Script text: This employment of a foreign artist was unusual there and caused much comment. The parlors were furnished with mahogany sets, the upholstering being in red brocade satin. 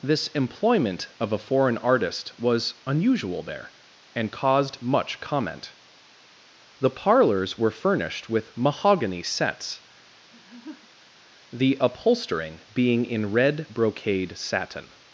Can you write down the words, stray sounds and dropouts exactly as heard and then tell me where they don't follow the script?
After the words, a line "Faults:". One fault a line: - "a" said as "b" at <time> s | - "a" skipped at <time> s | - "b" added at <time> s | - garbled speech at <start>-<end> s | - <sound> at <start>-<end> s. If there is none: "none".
This employment of a foreign artist was unusual there and caused much comment. The parlors were furnished with mahogany sets, the upholstering being in red brocade satin.
Faults:
- laugh at 10.3-11.1 s